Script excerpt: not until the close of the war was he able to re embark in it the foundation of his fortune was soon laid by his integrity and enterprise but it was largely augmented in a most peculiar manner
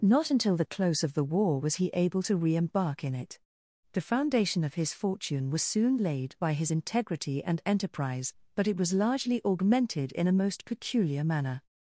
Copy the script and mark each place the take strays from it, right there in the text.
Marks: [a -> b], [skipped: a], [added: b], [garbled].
not until the close of the war was he able to re embark in it the foundation of his fortune was soon laid by his integrity and enterprise but it was largely augmented in a most peculiar manner